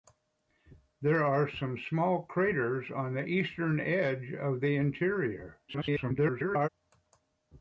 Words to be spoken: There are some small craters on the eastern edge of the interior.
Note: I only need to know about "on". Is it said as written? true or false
true